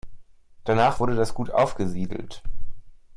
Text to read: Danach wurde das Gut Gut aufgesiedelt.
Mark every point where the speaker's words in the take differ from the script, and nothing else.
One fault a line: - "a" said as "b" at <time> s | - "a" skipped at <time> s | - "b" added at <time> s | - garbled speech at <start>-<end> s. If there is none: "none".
- "Gut" skipped at 1.5 s